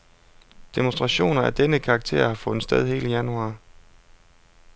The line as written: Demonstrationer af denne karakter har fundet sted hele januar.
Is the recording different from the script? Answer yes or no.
no